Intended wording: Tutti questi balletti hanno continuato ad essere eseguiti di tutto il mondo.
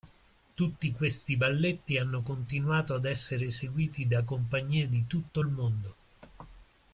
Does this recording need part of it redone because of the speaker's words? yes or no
yes